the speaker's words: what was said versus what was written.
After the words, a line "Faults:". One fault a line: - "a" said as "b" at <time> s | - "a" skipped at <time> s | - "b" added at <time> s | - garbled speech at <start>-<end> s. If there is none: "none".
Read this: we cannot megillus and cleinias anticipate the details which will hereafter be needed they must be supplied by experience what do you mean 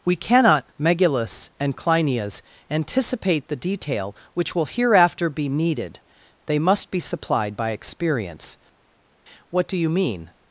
we cannot megillus and cleinias anticipate the detail which will hereafter be needed they must be supplied by experience what do you mean
Faults:
- "details" said as "detail" at 3.5 s